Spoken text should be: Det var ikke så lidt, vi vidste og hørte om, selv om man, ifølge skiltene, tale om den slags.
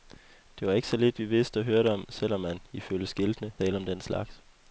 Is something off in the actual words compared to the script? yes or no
no